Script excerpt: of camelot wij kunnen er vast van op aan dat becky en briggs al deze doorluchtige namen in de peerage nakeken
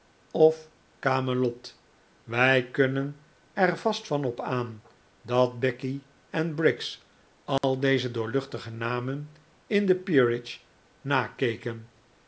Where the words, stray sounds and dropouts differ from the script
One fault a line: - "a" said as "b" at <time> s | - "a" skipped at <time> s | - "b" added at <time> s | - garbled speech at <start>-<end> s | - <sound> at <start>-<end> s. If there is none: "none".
- dropout at 7.6-7.6 s